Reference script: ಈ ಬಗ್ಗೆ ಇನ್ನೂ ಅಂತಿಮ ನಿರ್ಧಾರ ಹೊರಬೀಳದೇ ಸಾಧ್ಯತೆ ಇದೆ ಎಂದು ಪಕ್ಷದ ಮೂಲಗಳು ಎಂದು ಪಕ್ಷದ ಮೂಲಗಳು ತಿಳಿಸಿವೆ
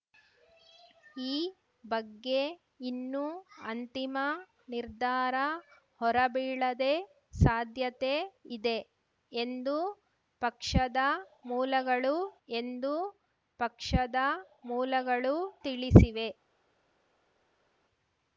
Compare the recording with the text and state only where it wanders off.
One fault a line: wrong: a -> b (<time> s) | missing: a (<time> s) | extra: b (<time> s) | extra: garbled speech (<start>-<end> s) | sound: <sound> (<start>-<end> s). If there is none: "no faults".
no faults